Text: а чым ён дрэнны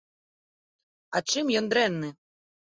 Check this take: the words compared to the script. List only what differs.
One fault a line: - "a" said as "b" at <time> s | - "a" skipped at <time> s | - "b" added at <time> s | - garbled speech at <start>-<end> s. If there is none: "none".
none